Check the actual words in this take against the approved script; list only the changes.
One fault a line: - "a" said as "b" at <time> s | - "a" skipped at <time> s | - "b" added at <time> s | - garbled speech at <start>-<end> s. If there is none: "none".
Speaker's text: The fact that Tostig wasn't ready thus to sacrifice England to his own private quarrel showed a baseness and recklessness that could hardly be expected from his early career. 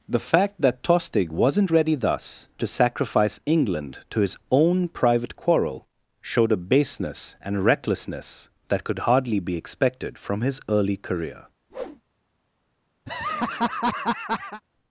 none